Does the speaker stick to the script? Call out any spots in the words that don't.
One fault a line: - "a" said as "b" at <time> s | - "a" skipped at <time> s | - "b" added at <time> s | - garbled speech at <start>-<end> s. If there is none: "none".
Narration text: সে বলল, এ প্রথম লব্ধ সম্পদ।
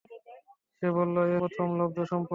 none